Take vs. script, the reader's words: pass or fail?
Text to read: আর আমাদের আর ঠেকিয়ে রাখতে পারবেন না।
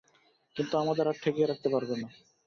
fail